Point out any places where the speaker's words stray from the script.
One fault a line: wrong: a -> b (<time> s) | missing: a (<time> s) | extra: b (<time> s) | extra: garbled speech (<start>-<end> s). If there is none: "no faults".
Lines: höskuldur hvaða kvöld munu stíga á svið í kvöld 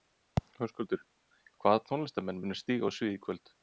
wrong: kvöld -> tónlistarmenn (1.9 s)